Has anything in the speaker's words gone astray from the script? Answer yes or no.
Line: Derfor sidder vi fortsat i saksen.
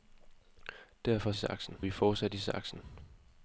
yes